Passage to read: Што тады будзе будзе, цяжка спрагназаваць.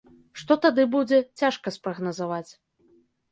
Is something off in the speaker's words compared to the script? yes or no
yes